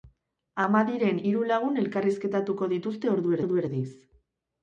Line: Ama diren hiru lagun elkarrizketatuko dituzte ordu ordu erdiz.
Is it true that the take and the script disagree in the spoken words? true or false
false